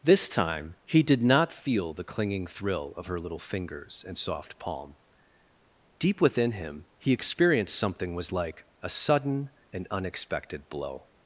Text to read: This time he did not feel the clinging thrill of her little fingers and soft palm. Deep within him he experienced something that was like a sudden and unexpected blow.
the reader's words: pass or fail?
fail